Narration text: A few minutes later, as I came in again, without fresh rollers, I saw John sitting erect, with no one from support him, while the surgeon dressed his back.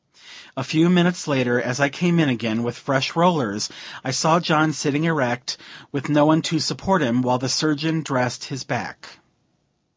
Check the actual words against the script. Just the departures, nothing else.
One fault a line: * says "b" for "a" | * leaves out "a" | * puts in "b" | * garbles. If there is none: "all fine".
* says "with" for "without"
* says "to" for "from"